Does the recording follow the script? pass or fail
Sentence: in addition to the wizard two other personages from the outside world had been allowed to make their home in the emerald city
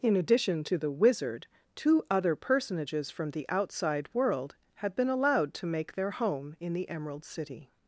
pass